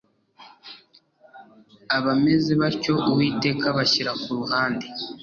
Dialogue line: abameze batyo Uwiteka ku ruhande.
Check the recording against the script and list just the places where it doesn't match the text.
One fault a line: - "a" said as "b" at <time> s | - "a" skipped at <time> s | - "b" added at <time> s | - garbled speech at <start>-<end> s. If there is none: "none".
- "abashyira" added at 3.7 s